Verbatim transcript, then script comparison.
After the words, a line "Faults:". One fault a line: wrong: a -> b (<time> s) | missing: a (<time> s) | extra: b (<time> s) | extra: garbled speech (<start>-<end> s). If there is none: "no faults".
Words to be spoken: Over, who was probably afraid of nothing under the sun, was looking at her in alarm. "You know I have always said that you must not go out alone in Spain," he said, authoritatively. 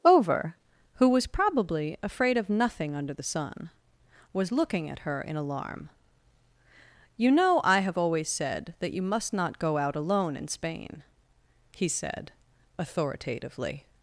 Over, who was probably afraid of nothing under the sun, was looking at her in alarm. "You know I have always said that you must not go out alone in Spain," he said, authoritatively.
Faults:
no faults